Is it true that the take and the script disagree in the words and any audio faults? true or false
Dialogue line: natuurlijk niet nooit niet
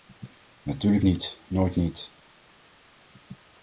false